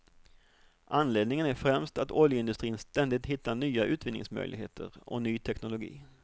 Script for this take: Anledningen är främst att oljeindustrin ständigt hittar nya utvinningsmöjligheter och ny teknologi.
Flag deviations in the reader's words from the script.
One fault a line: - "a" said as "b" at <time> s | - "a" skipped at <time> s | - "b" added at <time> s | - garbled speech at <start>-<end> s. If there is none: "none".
none